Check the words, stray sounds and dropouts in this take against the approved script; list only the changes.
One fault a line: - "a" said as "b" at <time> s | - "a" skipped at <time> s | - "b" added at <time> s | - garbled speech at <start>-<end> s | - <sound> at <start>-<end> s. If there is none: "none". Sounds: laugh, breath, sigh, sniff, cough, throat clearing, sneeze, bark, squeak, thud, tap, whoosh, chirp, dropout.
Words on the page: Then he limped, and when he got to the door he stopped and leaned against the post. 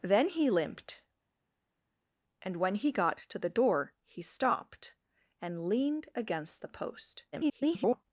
- garbled speech at 7.3-8.0 s